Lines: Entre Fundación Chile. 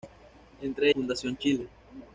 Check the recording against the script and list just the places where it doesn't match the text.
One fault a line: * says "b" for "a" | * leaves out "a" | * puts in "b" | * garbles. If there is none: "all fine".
all fine